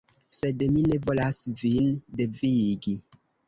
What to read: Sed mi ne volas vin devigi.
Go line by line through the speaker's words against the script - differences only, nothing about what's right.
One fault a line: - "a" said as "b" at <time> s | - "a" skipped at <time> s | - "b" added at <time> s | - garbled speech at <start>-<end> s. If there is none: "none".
none